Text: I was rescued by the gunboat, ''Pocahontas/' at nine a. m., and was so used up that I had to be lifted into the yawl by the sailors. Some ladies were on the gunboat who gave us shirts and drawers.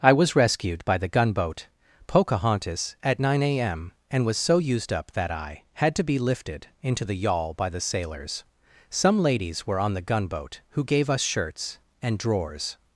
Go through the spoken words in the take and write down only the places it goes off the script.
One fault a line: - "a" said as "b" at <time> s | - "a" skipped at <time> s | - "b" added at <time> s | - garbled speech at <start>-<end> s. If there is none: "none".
none